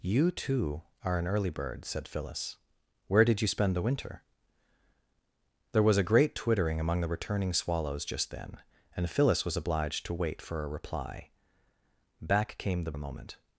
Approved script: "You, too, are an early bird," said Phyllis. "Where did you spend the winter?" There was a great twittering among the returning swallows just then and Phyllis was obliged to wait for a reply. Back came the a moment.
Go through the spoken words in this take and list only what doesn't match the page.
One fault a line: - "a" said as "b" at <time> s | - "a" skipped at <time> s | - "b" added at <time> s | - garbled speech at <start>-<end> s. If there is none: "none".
none